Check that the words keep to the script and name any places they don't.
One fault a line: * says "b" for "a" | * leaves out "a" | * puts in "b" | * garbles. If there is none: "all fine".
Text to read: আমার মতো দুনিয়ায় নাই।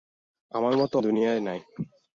all fine